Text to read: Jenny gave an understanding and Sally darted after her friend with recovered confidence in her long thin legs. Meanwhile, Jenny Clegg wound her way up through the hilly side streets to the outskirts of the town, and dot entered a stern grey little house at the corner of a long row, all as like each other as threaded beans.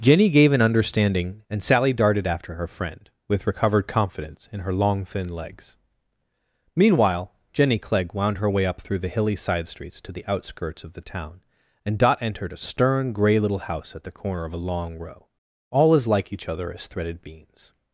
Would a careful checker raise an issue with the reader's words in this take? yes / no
no